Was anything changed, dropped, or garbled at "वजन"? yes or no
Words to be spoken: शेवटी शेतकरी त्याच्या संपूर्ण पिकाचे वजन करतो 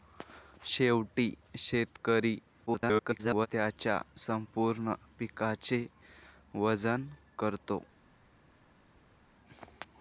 no